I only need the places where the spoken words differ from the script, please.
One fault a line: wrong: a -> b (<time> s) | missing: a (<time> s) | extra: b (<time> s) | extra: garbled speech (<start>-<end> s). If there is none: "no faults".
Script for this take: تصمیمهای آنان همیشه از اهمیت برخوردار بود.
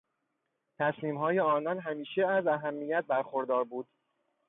no faults